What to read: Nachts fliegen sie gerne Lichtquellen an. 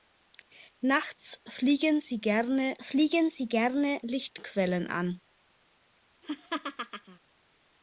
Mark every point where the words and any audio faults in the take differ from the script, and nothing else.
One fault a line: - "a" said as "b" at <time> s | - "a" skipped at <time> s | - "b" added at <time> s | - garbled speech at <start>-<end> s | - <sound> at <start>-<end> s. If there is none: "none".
- "fliegen sie gerne" added at 2.8 s
- laugh at 6.2-7.2 s